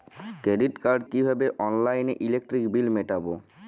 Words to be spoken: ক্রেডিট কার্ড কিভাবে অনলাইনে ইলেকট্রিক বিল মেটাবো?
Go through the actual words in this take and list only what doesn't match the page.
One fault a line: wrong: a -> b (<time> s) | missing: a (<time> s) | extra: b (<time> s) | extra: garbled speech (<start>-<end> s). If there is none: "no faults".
no faults